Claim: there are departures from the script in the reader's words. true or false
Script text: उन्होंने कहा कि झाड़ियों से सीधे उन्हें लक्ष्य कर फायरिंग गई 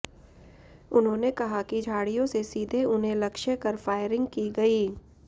true